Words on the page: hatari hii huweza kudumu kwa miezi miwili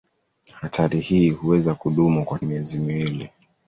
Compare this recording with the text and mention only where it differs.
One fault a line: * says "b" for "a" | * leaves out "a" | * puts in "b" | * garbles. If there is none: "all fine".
all fine